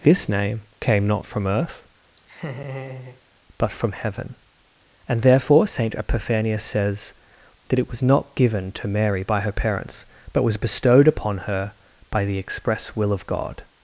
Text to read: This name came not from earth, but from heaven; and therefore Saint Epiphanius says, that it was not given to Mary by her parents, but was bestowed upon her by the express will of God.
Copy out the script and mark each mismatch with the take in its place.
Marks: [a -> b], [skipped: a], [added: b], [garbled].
This name came not from earth, but from heaven; and therefore Saint Epiphanius says, that it was not given to Mary by her parents, but was bestowed upon her by the express will of God.